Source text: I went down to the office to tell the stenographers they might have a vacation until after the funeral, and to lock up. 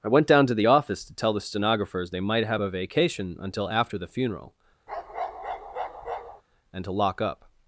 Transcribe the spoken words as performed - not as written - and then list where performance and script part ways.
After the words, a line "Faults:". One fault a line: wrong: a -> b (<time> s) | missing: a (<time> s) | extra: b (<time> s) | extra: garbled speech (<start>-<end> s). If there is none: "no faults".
I went down to the office to tell the stenographers they might have a vacation until after the funeral, and to lock up.
Faults:
no faults